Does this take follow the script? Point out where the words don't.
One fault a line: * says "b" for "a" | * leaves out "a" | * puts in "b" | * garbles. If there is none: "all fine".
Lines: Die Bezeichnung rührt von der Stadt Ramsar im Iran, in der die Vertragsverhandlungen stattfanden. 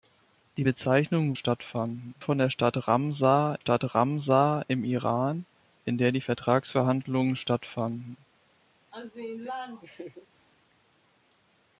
* says "stattfanden" for "rührt"
* puts in "Stadt Ramsar"